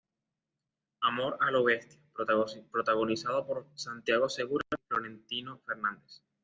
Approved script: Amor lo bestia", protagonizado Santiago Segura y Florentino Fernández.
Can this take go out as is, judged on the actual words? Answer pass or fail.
fail